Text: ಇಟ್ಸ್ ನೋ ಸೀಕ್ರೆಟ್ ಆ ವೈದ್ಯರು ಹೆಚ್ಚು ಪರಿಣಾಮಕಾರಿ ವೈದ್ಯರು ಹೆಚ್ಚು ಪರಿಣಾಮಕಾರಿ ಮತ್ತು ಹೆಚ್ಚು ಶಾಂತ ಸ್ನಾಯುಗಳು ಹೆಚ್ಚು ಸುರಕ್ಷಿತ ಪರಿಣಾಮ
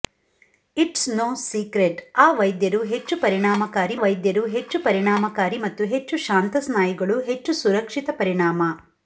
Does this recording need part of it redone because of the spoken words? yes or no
no